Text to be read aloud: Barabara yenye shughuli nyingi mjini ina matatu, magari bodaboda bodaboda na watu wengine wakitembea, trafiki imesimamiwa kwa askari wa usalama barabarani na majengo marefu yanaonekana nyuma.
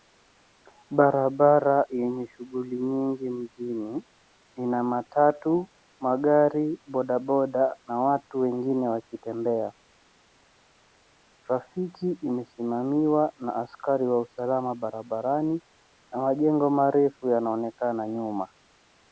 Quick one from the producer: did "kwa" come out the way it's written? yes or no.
no